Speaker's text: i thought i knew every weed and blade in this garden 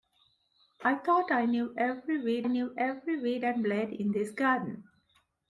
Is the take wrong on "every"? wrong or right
right